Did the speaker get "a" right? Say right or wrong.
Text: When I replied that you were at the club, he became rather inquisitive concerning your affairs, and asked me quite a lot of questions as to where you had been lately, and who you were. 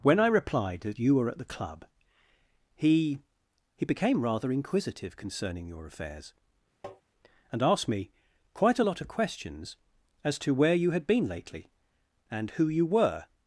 right